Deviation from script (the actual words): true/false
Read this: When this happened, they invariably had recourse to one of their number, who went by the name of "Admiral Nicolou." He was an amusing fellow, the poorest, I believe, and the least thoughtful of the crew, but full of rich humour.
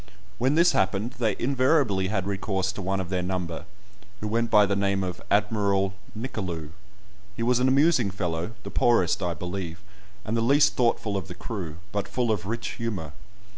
false